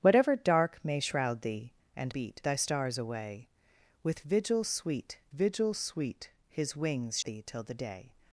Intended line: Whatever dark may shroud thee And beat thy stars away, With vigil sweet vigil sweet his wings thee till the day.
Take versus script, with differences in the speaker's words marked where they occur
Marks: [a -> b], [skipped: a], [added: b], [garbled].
Whatever dark may shroud thee And beat thy stars away, With vigil sweet vigil sweet his wings thee till the day.